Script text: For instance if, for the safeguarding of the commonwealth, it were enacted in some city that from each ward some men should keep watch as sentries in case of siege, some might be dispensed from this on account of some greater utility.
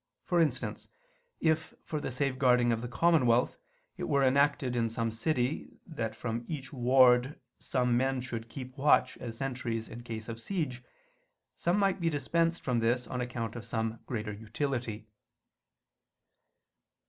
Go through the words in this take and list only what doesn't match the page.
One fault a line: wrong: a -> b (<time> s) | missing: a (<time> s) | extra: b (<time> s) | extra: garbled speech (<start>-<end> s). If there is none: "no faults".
no faults